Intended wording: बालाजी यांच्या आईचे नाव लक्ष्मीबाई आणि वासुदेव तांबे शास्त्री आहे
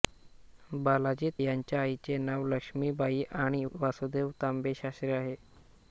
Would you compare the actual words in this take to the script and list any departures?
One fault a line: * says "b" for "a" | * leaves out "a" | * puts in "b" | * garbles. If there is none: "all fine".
all fine